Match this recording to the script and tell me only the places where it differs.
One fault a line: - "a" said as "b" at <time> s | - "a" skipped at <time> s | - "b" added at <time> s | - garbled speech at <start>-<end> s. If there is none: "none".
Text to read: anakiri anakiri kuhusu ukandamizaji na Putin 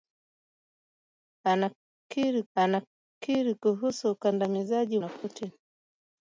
none